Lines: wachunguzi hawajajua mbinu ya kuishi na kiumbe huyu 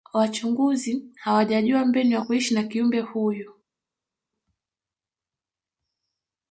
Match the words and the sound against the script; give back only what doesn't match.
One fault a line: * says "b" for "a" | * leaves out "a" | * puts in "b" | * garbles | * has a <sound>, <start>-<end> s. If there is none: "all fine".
all fine